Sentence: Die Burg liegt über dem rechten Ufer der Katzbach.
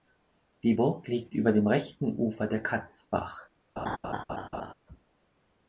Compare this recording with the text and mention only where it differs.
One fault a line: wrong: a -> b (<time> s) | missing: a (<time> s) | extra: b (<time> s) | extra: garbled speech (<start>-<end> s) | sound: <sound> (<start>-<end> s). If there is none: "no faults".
sound: laugh (3.8-4.7 s)